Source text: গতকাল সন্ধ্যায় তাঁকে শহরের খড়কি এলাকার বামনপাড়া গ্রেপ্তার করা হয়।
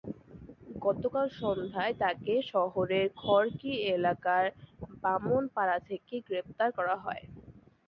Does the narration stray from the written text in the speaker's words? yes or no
yes